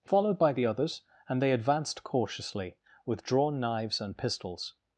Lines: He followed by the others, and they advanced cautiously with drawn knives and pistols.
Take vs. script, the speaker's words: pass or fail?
pass